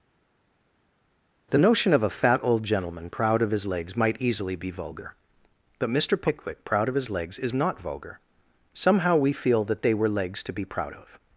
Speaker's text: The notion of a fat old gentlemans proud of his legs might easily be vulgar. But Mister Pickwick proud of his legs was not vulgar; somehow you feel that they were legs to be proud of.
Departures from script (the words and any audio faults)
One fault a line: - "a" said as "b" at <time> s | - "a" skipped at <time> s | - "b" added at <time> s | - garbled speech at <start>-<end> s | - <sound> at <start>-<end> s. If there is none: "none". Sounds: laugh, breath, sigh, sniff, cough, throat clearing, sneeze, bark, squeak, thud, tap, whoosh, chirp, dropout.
- "gentlemans" said as "gentleman" at 2.6 s
- "was" said as "is" at 7.4 s
- "you" said as "we" at 9.2 s